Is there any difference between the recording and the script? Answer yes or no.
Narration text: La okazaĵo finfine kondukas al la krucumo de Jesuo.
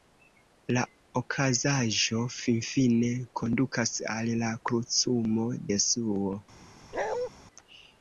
yes